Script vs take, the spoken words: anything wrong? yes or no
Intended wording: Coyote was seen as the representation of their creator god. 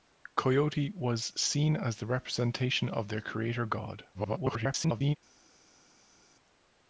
yes